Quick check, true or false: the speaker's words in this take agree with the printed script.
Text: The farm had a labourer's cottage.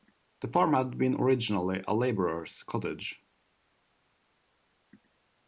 false